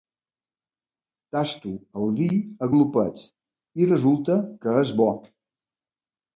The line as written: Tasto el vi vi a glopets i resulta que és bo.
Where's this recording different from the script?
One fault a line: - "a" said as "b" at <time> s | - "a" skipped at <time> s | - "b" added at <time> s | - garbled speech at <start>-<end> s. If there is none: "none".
- "vi" skipped at 2.3 s